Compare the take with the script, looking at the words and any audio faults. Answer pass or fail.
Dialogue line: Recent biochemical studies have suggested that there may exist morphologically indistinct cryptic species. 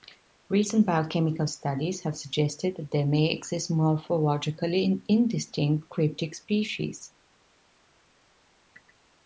pass